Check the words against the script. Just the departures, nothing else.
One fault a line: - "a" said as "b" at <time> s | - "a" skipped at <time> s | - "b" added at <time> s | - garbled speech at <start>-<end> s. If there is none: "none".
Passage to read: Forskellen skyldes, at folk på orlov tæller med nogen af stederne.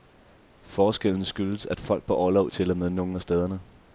none